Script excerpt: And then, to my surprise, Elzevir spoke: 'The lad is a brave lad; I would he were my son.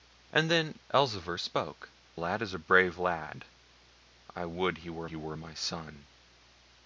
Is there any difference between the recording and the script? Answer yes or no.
yes